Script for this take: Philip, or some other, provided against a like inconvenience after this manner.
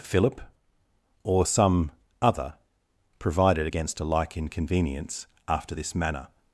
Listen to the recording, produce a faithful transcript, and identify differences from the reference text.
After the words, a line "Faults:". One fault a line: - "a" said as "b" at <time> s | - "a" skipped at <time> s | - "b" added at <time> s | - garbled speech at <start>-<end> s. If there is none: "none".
Philip, or some other, provided against a like inconvenience after this manner.
Faults:
none